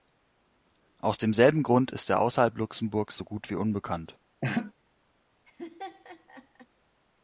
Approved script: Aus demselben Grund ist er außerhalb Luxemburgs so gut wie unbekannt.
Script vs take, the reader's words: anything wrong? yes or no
no